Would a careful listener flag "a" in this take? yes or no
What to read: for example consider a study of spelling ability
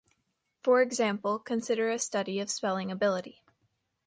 no